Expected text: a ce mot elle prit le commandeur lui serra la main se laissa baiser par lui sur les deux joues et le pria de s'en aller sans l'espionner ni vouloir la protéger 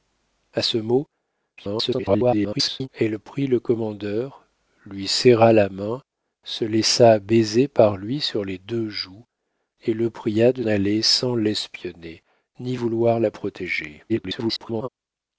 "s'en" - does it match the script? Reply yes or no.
no